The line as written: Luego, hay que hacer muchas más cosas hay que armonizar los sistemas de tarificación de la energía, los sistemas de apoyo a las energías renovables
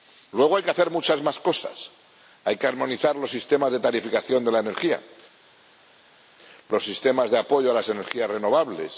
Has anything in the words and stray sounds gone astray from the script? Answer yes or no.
no